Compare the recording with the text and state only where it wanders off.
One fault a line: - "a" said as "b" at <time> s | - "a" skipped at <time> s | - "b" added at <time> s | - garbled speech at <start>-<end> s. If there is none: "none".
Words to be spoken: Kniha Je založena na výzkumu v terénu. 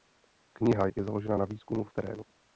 none